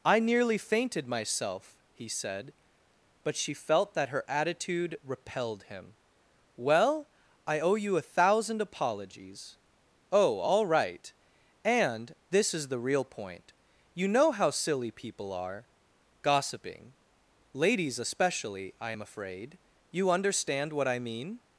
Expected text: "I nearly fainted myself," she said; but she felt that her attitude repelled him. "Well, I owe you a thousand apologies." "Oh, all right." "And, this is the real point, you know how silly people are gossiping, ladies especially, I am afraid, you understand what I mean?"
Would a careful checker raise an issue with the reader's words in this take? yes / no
yes